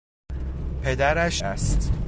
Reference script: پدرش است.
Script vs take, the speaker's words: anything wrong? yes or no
no